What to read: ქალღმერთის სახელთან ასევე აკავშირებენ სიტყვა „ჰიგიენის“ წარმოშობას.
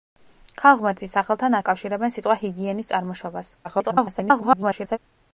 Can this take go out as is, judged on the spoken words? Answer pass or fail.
fail